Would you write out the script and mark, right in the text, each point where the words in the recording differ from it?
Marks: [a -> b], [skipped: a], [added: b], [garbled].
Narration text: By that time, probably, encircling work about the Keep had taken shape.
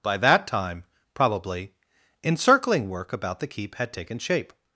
By that time, probably, encircling work about the Keep had taken shape.